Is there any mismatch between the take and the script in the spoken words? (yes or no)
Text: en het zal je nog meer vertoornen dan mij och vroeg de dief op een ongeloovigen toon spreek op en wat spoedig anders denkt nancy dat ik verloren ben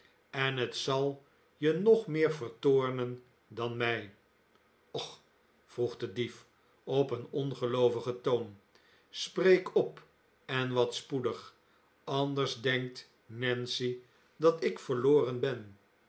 no